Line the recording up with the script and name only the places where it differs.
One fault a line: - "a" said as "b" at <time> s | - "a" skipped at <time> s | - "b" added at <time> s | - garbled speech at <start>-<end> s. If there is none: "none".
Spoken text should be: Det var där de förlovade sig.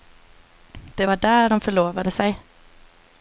none